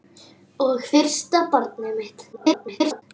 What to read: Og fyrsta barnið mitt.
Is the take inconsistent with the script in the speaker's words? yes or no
yes